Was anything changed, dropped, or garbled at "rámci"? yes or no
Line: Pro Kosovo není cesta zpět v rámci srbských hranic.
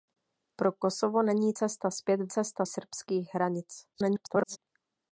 yes